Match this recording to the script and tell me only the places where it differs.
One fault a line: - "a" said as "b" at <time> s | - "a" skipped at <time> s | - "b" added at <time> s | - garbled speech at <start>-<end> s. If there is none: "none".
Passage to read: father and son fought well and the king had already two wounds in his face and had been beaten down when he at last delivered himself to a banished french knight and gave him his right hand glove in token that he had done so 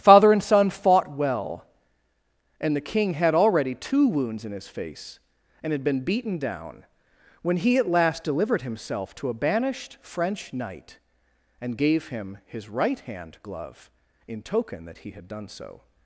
none